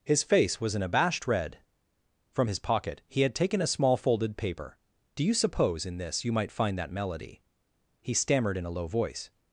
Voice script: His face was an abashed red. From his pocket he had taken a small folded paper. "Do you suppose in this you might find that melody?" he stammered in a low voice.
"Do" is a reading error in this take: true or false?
false